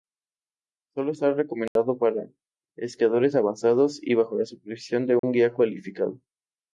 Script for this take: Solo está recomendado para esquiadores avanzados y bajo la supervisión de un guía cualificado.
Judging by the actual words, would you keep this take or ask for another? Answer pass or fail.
pass